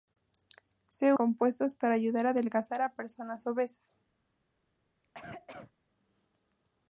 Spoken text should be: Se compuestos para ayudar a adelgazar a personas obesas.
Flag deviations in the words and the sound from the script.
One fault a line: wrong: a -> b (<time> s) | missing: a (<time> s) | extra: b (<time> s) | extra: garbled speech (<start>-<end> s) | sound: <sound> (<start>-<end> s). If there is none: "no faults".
sound: cough (5.0-5.7 s)